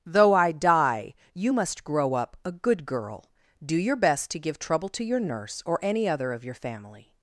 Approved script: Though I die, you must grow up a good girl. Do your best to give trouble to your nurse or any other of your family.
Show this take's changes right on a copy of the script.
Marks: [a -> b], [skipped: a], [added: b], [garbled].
Though I die, you must grow up a good girl. Do your best to give trouble to your nurse or any other of your family.